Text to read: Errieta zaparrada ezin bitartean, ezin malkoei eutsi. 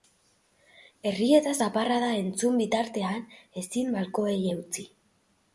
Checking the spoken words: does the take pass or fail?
fail